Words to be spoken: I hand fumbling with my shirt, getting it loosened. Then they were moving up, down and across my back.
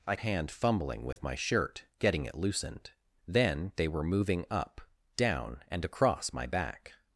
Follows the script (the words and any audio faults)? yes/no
no